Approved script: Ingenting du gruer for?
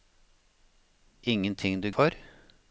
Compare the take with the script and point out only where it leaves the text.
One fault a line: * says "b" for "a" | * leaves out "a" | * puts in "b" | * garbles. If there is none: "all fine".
* leaves out "gruer"